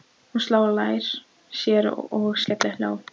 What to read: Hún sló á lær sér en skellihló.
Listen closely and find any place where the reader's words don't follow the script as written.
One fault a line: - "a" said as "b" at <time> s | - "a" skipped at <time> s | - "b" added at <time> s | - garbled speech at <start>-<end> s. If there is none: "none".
- "en" said as "og" at 2.2 s